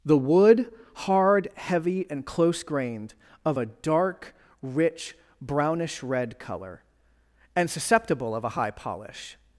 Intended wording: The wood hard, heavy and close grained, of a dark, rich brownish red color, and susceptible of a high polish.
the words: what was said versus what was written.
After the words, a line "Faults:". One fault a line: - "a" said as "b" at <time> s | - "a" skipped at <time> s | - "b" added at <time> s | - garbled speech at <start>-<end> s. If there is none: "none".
The wood hard, heavy and close grained, of a dark, rich brownish red color, and susceptible of a high polish.
Faults:
none